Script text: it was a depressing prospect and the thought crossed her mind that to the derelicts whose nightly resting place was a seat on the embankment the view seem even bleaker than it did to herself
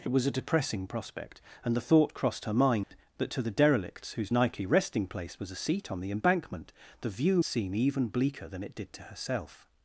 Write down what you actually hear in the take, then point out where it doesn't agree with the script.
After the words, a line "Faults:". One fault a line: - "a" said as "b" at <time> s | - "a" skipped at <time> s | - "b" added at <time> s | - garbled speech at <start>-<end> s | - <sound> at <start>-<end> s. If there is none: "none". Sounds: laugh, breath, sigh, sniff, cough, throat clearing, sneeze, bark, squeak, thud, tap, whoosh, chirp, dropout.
it was a depressing prospect and the thought crossed her mind that to the derelicts whose nightly resting place was a seat on the embankment the view seem even bleaker than it did to herself
Faults:
- dropout at 2.8-2.9 s